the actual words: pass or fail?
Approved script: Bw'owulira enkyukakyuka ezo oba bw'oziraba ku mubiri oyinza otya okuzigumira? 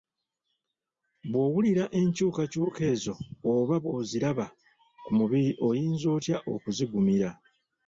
pass